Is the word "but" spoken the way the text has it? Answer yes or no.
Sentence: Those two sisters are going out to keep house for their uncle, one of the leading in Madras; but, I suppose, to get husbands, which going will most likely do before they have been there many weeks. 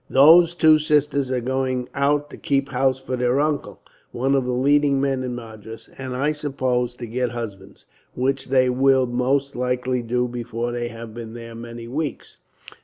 no